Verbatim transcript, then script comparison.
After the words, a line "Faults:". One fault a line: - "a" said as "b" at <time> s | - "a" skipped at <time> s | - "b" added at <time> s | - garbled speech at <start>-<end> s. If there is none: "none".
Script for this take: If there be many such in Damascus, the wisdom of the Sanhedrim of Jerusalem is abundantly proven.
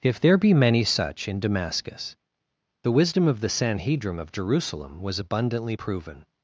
If there be many such in Damascus, the wisdom of the Sanhedrim of Jerusalem was abundantly proven.
Faults:
- "is" said as "was" at 5.0 s